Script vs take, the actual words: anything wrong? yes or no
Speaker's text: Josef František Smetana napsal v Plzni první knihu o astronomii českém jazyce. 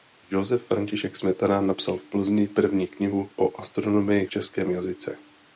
no